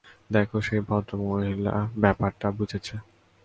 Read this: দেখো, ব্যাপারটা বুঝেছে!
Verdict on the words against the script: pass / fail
fail